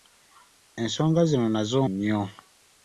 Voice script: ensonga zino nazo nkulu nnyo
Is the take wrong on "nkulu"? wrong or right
wrong